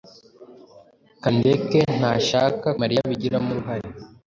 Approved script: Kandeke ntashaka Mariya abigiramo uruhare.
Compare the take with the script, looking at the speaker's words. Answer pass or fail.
pass